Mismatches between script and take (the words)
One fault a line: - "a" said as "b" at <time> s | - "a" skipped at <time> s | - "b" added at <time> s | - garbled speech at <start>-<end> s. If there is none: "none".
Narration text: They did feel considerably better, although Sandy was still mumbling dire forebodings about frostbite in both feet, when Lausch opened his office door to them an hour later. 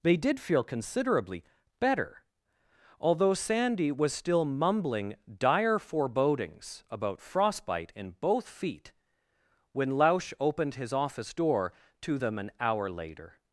none